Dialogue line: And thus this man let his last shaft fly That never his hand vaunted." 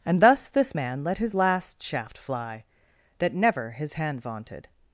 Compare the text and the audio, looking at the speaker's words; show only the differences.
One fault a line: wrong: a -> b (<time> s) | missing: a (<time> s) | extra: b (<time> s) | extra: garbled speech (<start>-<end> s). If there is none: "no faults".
no faults